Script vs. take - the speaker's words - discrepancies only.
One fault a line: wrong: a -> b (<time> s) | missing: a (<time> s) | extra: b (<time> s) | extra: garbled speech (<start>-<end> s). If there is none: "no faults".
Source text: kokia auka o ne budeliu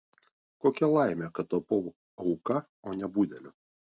extra: laimė kad tapau (0.9 s)